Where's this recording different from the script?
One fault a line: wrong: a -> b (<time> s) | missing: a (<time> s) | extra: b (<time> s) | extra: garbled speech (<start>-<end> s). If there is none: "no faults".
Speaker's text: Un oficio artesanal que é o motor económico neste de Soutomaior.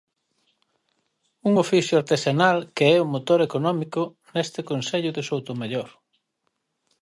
extra: concello (4.7 s)